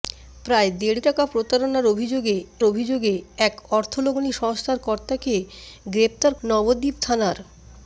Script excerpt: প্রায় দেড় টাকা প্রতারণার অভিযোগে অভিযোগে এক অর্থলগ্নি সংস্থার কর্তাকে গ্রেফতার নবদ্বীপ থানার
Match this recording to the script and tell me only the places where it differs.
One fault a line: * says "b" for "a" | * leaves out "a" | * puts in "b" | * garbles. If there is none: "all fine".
all fine